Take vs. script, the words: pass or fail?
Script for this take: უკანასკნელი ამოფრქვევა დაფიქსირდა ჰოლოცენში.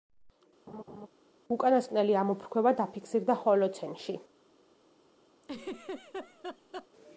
pass